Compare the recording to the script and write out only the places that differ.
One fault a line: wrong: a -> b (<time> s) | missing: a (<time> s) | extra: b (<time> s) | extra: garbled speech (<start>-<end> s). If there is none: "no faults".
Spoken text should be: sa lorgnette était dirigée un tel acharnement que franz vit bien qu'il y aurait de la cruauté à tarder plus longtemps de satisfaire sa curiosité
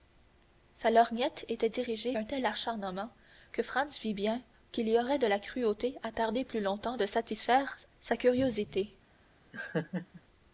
no faults